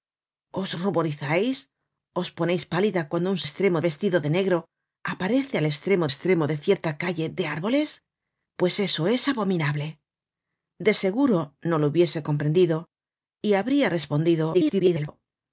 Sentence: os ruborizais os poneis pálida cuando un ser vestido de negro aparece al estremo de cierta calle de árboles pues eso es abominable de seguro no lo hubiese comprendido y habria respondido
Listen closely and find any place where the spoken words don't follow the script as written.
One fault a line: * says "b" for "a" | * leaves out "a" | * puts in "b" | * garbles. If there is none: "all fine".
* says "estremo" for "ser"
* puts in "estremo"
* garbles